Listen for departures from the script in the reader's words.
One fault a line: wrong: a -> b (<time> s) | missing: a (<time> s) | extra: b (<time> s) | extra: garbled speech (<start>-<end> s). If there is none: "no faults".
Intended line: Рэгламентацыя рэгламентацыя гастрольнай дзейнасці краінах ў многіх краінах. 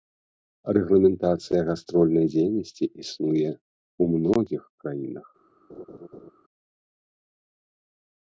missing: рэгламентацыя (1.6 s)
wrong: краінах -> існуе (3.0 s)